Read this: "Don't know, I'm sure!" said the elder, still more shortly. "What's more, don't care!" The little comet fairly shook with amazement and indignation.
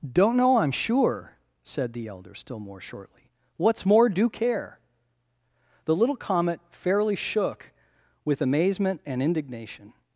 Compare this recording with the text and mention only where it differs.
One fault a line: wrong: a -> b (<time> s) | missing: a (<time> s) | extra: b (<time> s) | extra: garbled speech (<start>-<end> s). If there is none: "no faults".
wrong: don't -> do (4.1 s)